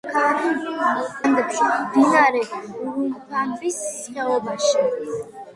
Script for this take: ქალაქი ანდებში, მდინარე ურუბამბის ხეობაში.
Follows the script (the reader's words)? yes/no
yes